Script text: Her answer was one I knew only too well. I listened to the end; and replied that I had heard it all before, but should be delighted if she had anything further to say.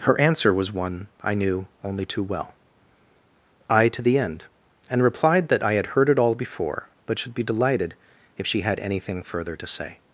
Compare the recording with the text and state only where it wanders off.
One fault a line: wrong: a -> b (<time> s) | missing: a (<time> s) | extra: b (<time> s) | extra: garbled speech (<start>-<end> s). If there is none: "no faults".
missing: listened (3.9 s)